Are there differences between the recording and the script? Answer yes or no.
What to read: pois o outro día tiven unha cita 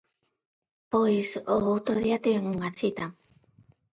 no